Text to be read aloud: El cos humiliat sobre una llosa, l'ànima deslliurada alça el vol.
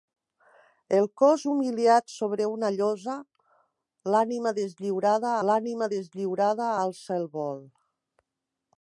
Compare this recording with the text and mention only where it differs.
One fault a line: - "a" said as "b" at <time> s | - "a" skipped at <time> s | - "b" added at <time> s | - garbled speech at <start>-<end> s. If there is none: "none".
- "l'ànima deslliurada" added at 5.5 s